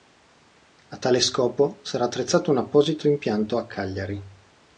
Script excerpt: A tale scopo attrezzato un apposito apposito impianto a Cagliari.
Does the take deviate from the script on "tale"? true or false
false